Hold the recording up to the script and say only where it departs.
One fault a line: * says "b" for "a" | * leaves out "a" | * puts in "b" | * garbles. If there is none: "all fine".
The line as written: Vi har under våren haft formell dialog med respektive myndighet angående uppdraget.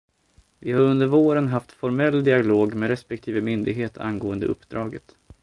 all fine